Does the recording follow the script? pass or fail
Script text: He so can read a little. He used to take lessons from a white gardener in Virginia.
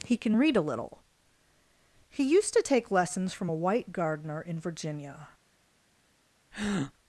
fail